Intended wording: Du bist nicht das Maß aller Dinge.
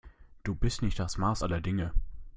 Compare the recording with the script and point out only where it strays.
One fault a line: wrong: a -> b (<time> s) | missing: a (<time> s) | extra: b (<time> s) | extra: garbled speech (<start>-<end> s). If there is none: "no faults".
no faults